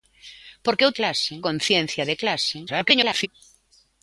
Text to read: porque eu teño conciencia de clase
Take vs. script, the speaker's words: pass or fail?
fail